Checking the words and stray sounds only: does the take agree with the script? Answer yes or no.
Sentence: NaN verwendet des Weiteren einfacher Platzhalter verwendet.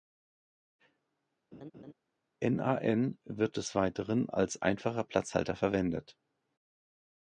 no